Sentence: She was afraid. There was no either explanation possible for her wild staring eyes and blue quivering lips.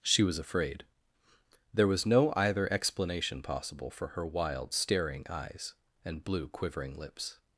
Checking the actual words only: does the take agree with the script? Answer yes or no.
yes